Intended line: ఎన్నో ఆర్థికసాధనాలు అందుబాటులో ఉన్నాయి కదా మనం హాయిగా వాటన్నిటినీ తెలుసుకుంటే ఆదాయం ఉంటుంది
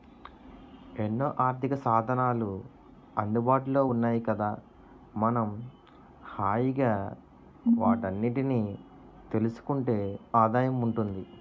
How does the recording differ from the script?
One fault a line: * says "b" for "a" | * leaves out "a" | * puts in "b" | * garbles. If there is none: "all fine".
all fine